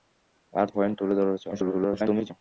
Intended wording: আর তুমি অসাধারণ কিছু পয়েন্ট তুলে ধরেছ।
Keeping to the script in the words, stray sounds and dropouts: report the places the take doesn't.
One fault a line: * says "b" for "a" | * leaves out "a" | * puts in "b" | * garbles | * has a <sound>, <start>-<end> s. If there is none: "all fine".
* leaves out "তুমি অসাধারণ কিছু"
* garbles